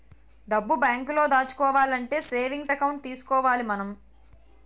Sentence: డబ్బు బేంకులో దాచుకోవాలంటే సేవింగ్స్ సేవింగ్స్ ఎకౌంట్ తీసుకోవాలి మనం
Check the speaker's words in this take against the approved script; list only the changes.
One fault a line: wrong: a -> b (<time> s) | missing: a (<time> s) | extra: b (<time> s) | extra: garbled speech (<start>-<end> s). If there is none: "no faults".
missing: సేవింగ్స్ (2.7 s)